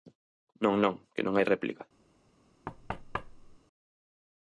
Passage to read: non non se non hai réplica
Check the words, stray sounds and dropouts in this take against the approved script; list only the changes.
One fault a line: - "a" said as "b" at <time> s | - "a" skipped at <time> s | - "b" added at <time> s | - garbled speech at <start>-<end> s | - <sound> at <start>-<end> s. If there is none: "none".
- "se" said as "que" at 1.1 s
- thud at 2.7-3.6 s